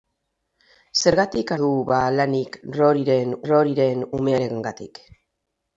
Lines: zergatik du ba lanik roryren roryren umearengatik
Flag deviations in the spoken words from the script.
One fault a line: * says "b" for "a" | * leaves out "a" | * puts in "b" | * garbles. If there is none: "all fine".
all fine